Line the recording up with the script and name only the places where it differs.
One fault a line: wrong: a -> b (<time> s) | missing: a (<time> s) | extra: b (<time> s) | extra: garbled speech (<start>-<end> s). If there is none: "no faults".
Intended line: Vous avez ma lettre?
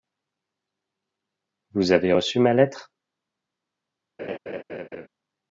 extra: reçu (2.1 s)